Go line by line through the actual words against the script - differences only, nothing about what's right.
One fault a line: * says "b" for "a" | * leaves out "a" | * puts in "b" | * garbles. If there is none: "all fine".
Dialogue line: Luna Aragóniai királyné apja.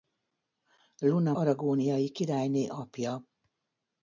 all fine